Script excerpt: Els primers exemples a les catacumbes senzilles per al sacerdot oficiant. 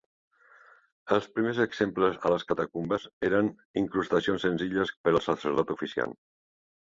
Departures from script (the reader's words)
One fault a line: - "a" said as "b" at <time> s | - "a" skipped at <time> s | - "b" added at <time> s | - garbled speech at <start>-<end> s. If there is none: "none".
- "eren incrustacions" added at 3.3 s